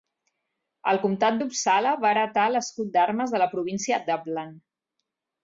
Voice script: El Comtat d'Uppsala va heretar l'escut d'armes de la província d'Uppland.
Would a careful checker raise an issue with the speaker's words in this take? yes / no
no